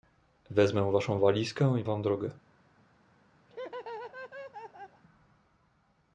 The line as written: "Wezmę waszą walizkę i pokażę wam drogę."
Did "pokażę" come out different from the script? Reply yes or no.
yes